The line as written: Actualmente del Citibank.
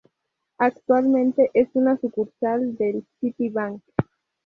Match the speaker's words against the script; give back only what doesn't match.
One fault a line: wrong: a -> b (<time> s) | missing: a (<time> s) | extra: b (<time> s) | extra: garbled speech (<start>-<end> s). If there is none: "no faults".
extra: es una sucursal (1.5 s)